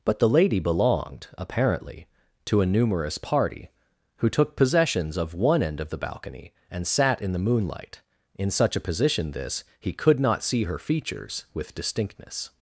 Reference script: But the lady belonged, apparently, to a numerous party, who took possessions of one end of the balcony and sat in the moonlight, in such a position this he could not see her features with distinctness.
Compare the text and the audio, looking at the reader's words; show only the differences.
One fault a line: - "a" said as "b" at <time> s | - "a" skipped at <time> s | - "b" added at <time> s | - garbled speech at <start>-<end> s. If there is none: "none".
none